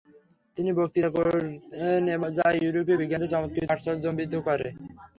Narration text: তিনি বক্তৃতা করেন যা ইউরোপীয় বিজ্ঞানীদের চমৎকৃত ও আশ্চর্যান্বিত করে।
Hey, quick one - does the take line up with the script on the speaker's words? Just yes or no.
no